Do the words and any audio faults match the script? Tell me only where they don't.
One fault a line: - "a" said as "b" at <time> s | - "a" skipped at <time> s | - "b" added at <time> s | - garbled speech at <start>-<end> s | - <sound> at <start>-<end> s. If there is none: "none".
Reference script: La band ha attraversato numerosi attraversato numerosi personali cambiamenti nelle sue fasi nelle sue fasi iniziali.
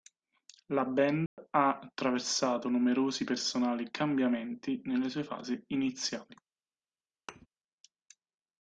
- dropout at 1.3-1.4 s
- "attraversato numerosi" skipped at 3.2 s
- "nelle sue fasi" skipped at 5.6 s
- thud at 7.3-7.5 s